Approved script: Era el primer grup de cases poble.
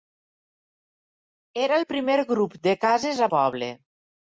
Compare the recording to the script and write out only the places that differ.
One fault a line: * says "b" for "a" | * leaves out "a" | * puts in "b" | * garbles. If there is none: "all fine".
all fine